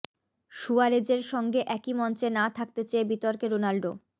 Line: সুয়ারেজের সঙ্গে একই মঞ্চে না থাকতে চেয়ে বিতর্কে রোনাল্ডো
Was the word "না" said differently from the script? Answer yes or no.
no